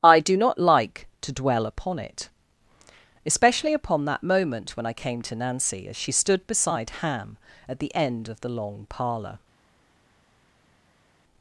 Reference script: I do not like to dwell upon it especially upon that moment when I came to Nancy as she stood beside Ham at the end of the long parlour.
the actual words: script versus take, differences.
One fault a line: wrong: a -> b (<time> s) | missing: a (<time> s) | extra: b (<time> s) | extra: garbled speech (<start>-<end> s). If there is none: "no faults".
no faults